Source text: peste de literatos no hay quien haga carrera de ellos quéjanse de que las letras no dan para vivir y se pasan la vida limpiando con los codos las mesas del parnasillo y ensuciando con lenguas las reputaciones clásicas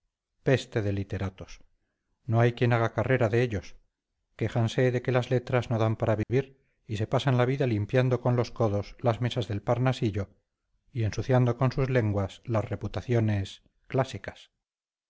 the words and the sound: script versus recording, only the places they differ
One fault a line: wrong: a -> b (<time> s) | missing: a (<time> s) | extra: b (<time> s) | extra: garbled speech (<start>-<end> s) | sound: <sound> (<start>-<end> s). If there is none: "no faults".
sound: dropout (6.2-6.3 s)
extra: sus (11.7 s)